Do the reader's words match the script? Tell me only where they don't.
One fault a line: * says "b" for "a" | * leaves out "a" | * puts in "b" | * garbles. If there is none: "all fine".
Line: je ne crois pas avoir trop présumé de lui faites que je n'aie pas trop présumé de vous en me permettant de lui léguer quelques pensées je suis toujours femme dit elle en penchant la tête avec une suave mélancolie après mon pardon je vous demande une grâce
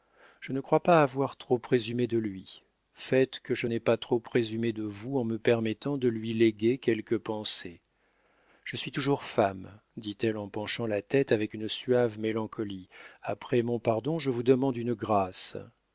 all fine